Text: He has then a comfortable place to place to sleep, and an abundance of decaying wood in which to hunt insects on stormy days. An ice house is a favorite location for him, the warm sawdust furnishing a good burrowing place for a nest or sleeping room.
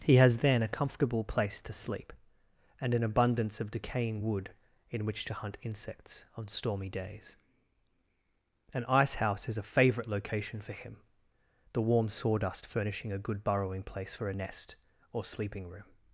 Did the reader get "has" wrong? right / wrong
right